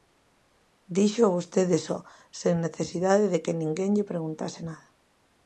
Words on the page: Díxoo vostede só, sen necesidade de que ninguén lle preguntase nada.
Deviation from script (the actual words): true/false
false